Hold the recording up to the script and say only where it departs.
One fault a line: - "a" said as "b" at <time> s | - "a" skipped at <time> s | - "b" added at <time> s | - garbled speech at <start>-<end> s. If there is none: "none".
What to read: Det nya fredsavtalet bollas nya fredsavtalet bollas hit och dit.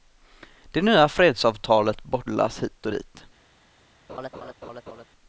- "nya fredsavtalet bollas" skipped at 2.6 s